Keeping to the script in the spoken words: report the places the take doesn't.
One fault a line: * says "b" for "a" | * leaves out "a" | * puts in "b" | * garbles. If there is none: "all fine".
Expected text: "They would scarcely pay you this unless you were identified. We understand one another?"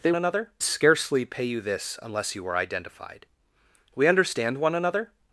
* says "another" for "would"